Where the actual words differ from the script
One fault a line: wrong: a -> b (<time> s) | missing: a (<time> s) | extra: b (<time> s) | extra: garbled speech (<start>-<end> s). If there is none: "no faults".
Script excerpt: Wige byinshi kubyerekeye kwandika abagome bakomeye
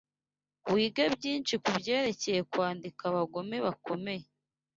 no faults